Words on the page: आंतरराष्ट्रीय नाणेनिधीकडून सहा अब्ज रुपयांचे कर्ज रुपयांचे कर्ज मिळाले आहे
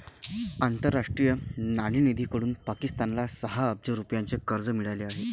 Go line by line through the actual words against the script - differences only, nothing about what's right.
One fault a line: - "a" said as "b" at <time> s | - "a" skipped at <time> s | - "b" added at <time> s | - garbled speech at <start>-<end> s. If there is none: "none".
- "पाकिस्तानला" added at 2.6 s
- "रुपयांचे कर्ज" skipped at 4.7 s